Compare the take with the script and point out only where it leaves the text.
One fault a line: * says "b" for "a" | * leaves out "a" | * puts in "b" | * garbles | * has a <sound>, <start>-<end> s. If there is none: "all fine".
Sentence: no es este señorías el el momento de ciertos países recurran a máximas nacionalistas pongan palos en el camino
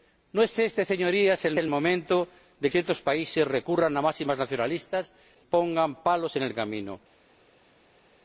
all fine